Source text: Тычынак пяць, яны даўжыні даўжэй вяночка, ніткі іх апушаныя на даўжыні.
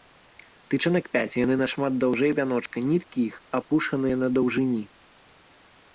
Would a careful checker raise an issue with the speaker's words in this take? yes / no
yes